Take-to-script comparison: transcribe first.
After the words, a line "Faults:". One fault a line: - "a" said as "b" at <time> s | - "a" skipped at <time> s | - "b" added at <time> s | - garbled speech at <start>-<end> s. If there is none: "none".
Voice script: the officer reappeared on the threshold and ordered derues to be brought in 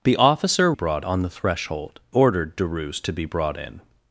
the officer brought on the threshold ordered derues to be brought in
Faults:
- "reappeared" said as "brought" at 0.7 s
- "and" skipped at 2.0 s